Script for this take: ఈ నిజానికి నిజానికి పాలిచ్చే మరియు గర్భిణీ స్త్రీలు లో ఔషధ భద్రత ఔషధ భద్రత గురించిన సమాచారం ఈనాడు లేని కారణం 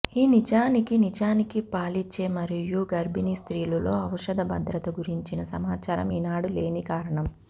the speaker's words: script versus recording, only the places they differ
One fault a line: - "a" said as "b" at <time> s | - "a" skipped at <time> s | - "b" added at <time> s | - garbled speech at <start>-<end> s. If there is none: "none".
- "ఔషధ భద్రత" skipped at 4.9 s